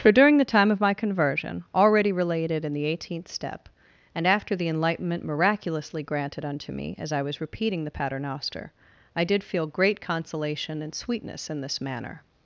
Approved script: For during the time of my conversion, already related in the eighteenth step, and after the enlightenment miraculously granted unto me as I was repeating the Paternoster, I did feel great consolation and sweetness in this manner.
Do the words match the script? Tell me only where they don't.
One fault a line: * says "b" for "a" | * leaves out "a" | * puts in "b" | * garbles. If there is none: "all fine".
all fine